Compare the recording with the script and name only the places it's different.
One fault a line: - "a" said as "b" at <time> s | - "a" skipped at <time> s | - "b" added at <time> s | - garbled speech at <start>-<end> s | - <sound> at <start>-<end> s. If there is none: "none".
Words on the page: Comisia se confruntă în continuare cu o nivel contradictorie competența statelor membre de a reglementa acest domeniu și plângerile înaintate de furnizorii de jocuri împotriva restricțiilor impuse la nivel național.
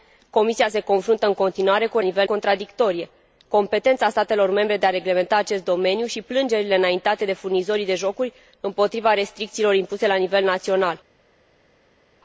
none